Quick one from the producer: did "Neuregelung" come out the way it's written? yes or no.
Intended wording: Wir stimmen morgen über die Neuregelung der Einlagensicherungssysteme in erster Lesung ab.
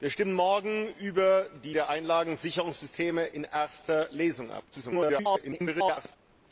no